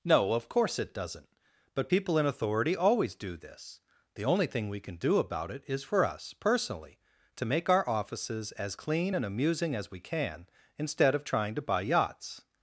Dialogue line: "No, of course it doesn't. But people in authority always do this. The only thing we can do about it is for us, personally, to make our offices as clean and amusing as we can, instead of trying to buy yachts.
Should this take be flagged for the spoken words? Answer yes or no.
no